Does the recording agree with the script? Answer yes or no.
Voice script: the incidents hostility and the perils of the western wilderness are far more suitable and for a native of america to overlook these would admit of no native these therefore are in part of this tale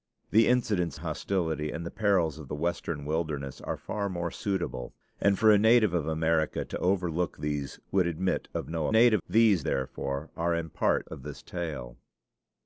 yes